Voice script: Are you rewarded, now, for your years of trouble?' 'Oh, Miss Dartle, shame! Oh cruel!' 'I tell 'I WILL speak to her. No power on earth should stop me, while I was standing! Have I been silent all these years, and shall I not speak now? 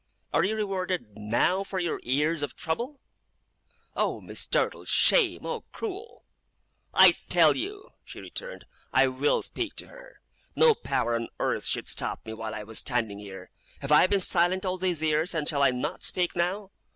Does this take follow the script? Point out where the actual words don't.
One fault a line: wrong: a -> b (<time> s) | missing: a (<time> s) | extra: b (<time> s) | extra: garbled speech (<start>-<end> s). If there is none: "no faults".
extra: you she returned (7.5 s)
extra: here (13.2 s)